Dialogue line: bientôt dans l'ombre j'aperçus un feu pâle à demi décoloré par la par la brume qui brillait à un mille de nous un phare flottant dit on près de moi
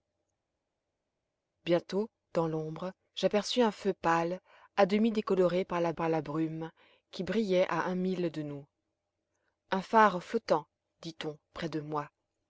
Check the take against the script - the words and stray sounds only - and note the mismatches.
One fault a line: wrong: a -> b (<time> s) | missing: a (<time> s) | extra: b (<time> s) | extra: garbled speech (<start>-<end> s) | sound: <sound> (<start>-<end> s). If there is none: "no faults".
no faults